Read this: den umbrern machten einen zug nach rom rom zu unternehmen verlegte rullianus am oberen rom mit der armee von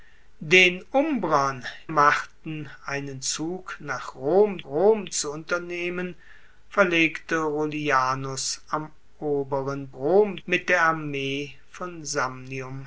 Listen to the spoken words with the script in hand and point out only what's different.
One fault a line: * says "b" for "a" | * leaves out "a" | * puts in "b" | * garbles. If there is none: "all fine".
all fine